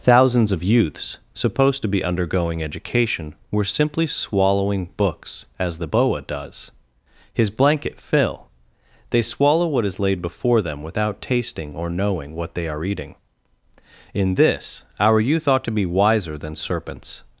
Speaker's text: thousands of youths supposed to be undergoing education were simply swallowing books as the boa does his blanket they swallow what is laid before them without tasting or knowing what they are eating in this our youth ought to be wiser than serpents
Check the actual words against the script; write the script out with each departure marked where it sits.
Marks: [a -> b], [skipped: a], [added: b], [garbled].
thousands of youths supposed to be undergoing education were simply swallowing books as the boa does his blanket [added: fill] they swallow what is laid before them without tasting or knowing what they are eating in this our youth ought to be wiser than serpents